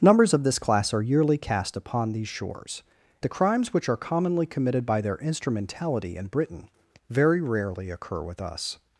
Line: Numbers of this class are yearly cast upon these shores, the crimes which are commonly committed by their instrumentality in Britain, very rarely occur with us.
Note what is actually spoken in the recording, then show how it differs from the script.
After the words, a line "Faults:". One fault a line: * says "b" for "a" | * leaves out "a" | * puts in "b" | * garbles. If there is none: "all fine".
Numbers of this class are yearly cast upon these shores, the crimes which are commonly committed by their instrumentality in Britain, very rarely occur with us.
Faults:
all fine